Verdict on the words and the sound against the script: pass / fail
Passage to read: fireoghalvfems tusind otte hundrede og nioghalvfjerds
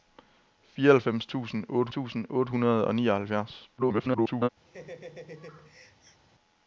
fail